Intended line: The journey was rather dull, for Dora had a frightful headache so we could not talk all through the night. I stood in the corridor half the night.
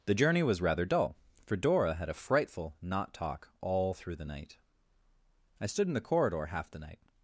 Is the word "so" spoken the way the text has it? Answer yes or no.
no